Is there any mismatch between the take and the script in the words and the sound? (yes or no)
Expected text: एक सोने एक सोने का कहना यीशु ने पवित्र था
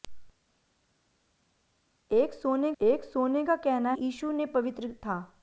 no